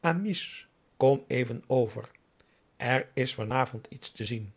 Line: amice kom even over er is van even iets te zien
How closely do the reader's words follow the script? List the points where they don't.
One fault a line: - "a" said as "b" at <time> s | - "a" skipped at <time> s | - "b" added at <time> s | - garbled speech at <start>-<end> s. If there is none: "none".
- "even" said as "avond" at 3.5 s